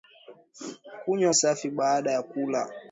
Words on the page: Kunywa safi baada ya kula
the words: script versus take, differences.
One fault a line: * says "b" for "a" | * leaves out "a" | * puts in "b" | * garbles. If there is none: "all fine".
all fine